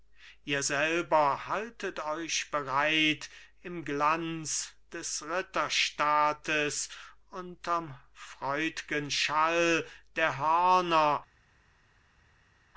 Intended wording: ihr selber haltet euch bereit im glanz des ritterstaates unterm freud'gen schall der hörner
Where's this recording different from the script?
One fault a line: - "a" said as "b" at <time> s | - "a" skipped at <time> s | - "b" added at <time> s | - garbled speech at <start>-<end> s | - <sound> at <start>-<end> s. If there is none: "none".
none